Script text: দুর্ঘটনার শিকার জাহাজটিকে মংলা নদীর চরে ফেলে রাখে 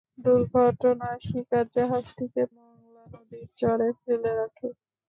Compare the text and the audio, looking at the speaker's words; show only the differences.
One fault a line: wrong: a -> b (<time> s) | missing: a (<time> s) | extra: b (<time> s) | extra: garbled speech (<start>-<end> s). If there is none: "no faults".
no faults